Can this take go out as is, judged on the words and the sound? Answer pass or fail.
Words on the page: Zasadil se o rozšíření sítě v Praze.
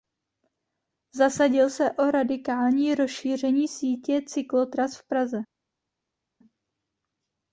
fail